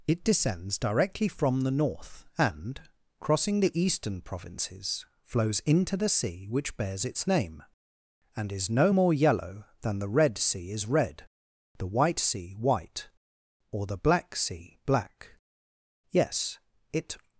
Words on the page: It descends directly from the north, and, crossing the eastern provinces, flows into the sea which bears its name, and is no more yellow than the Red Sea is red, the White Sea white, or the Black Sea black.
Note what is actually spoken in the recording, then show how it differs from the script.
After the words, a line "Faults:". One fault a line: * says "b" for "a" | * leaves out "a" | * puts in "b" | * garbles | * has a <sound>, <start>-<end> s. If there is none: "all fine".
It descends directly from the north, and, crossing the eastern provinces, flows into the sea which bears its name, and is no more yellow than the Red Sea is red, the White Sea white, or the Black Sea black. Yes, it
Faults:
* puts in "Yes it"